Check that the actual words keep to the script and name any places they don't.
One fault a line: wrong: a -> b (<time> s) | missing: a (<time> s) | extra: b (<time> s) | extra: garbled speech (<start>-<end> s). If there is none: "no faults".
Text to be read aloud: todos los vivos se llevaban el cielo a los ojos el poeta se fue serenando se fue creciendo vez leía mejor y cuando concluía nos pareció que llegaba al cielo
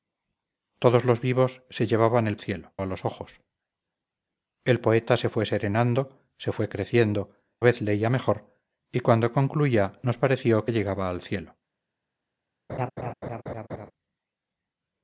no faults